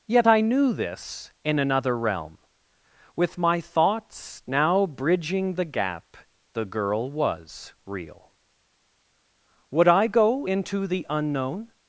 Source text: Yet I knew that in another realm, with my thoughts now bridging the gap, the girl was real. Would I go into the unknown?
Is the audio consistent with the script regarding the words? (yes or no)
no